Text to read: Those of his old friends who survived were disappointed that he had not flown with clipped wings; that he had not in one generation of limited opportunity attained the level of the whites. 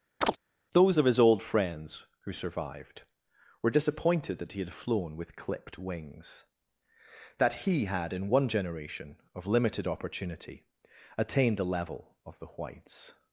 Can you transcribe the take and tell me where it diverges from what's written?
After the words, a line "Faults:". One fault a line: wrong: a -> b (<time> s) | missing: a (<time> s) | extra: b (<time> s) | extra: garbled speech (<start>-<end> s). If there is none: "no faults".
Those of his old friends who survived were disappointed that he had flown with clipped wings; that he had in one generation of limited opportunity attained the level of the whites.
Faults:
missing: not (4.7 s)
missing: not (8.1 s)